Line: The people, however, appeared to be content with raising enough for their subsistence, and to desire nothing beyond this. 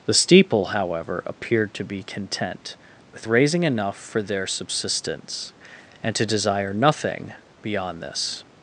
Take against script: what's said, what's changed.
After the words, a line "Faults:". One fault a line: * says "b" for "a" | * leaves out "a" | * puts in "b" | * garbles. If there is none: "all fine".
The steeple, however, appeared to be content with raising enough for their subsistence, and to desire nothing beyond this.
Faults:
* says "steeple" for "people"